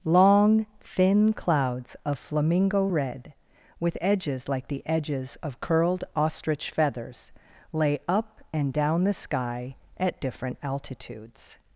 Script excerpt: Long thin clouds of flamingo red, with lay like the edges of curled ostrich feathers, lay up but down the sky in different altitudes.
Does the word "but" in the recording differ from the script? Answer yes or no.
yes